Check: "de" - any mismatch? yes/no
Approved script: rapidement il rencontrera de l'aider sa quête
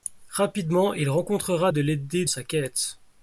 no